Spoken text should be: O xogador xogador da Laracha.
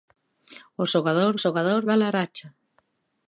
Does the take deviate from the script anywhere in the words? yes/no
no